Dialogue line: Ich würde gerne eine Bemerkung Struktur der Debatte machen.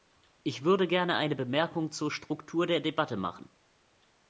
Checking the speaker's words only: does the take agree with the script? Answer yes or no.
no